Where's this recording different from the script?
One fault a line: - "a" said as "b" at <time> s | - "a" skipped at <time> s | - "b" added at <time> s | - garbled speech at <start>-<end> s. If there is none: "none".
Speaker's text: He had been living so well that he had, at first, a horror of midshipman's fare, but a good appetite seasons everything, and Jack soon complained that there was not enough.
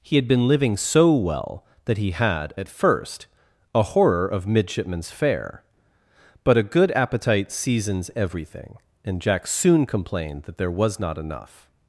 none